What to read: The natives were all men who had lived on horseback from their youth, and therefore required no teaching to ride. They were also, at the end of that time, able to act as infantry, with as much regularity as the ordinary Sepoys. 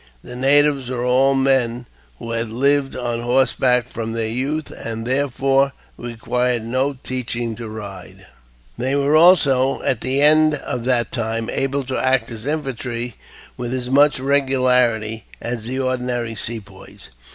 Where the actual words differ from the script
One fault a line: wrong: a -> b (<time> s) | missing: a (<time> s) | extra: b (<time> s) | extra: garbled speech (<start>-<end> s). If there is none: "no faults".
no faults